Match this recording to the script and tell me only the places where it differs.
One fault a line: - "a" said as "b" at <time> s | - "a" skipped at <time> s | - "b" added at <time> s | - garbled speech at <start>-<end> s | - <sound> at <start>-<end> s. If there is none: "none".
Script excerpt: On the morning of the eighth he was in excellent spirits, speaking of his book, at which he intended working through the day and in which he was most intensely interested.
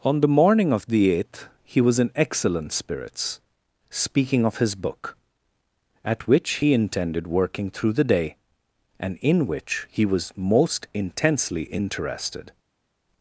none